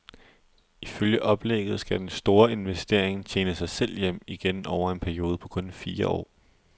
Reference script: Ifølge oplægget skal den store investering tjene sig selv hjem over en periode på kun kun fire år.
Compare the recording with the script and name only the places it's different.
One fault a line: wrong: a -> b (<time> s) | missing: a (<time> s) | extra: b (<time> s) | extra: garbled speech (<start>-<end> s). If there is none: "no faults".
extra: igen (4.3 s)
missing: kun (5.7 s)